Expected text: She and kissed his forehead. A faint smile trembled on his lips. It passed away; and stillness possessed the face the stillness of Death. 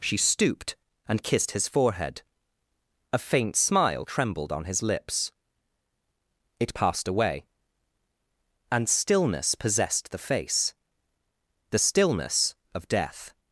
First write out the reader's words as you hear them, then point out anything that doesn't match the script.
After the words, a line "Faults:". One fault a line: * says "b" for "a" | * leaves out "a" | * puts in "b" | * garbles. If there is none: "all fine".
She stooped and kissed his forehead. A faint smile trembled on his lips. It passed away; and stillness possessed the face the stillness of Death.
Faults:
* puts in "stooped"